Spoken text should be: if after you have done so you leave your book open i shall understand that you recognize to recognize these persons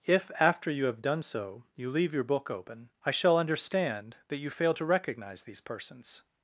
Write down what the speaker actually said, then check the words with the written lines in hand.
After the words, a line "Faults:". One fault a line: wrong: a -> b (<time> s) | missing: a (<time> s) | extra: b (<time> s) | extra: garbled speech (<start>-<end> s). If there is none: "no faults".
if after you have done so you leave your book open i shall understand that you fail to recognize these persons
Faults:
wrong: recognize -> fail (4.5 s)